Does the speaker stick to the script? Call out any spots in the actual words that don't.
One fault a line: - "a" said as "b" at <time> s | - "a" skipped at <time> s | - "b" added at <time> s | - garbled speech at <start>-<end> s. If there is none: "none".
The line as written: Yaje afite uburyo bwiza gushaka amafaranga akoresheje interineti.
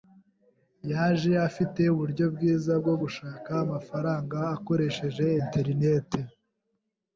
- "bwo" added at 2.8 s